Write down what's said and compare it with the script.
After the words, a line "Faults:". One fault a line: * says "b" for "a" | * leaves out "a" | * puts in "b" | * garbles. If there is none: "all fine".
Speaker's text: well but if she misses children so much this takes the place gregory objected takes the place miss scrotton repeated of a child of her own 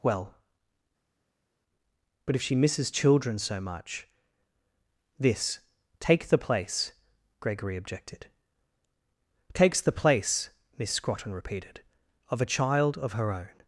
well but if she misses children so much this take the place gregory objected takes the place miss scrotton repeated of a child of her own
Faults:
* says "take" for "takes"